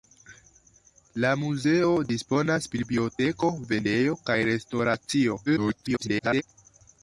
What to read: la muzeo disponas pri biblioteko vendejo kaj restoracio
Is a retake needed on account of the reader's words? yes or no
yes